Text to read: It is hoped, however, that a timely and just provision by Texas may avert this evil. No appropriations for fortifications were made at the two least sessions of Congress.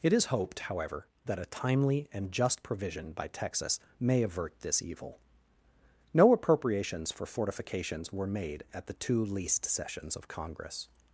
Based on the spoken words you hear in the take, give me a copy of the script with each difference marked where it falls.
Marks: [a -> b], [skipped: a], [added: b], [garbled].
It is hoped, however, that a timely and just provision by Texas may avert this evil. No appropriations for fortifications were made at the two least sessions of Congress.